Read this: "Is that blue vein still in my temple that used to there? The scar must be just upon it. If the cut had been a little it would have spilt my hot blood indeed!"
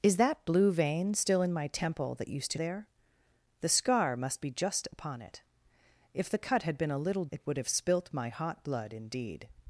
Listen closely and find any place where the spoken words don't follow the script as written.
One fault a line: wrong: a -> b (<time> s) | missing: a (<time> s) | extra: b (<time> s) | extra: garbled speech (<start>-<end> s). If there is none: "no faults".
no faults